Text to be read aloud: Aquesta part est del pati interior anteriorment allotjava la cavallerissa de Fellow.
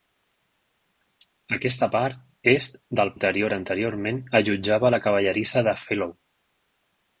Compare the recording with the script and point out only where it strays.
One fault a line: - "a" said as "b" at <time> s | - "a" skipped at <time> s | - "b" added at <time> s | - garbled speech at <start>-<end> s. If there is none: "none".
- "pati" skipped at 3.1 s